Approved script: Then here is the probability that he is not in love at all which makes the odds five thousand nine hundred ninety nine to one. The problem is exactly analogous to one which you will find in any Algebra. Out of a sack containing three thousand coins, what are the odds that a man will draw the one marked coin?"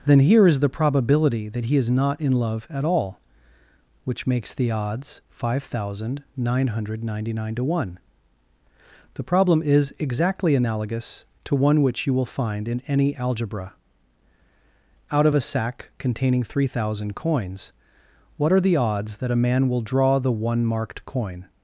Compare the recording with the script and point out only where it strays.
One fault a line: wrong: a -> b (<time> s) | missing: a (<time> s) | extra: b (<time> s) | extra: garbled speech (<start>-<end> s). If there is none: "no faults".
no faults